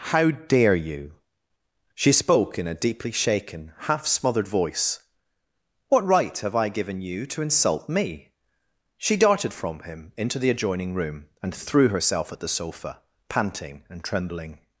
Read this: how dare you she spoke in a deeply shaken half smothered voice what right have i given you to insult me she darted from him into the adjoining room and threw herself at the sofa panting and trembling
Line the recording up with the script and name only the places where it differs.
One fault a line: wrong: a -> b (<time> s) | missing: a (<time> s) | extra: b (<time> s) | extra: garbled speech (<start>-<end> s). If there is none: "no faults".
no faults